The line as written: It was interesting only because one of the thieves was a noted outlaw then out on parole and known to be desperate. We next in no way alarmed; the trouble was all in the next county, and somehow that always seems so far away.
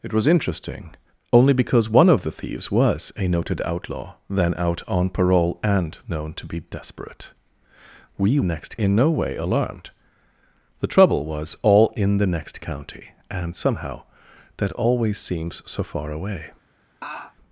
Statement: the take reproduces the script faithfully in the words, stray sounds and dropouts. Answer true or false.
false